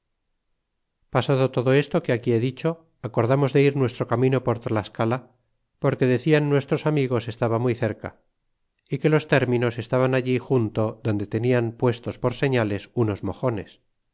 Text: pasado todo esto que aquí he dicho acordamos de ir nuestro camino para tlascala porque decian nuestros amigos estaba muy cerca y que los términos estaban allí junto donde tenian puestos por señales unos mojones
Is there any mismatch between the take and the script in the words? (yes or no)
yes